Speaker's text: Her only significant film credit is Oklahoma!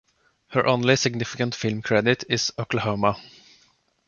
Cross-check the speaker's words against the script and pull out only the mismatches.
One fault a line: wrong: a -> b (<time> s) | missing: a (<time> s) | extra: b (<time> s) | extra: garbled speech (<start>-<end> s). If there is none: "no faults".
no faults